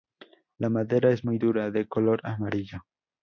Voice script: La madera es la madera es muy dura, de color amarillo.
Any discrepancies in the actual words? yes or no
yes